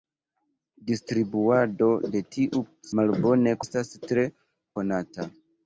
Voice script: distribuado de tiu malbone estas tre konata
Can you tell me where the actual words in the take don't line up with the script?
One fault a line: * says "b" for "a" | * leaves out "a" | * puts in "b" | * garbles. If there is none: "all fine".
all fine